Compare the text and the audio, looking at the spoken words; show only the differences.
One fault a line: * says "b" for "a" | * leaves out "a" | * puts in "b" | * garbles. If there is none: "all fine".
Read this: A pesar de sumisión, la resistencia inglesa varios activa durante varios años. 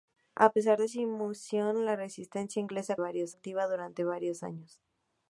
all fine